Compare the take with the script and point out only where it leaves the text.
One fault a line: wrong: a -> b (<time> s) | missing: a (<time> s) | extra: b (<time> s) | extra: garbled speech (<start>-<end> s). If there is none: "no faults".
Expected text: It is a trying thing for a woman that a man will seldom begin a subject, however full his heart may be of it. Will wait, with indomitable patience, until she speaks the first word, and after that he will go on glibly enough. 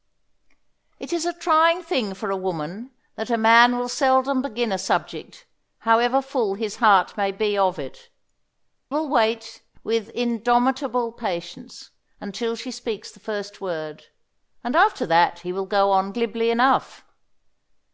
no faults